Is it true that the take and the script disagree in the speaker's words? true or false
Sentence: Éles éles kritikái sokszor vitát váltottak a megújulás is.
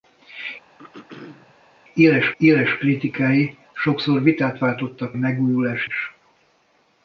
false